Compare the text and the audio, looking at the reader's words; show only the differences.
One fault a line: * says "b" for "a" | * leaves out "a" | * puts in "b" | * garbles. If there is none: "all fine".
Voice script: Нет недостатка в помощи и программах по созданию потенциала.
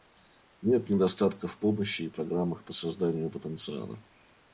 all fine